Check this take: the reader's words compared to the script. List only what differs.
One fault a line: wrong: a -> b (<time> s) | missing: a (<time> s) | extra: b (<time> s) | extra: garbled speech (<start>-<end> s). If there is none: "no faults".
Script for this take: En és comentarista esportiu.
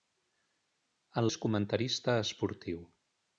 no faults